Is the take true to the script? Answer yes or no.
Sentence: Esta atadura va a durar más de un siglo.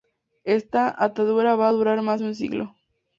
yes